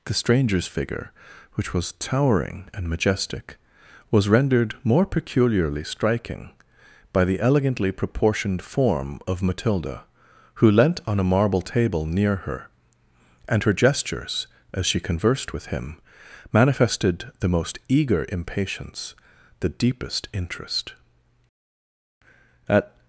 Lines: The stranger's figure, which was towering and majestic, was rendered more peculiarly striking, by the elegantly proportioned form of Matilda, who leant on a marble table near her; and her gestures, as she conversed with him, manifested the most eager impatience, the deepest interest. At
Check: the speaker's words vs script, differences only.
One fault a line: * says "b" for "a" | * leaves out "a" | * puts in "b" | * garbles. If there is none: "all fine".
all fine